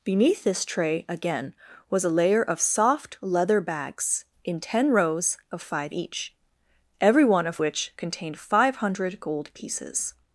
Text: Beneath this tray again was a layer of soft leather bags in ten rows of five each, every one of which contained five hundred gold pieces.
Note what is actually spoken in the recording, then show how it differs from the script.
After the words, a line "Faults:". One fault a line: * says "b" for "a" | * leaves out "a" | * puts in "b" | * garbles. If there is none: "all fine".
Beneath this tray again was a layer of soft leather bags in ten rows of five each, every one of which contained five hundred gold pieces.
Faults:
all fine